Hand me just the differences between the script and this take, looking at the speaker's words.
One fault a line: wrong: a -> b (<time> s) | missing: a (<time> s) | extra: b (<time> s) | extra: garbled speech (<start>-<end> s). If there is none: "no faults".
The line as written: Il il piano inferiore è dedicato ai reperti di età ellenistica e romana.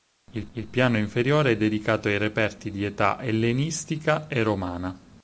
no faults